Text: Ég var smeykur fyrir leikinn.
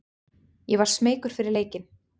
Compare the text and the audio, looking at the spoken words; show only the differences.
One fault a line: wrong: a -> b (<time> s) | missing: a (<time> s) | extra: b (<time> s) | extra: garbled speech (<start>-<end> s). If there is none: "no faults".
no faults